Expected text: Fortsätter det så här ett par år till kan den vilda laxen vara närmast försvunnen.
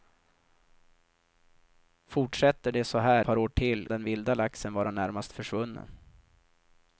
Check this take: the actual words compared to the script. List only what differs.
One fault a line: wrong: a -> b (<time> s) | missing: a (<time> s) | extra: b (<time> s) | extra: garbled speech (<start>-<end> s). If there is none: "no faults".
missing: ett (3.2 s)
missing: kan (3.9 s)